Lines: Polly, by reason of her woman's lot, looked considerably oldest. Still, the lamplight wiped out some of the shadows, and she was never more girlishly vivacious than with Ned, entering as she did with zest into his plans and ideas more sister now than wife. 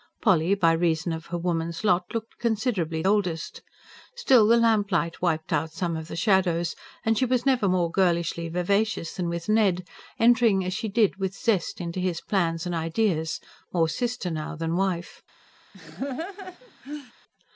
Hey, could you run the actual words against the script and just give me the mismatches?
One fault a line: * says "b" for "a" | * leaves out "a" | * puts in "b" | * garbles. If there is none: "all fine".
all fine